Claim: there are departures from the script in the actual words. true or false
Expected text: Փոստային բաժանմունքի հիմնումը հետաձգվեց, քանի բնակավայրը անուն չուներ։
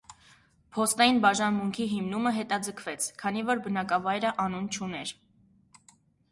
true